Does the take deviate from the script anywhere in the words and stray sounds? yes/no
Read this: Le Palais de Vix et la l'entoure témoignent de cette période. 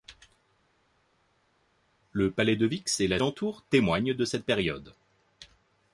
no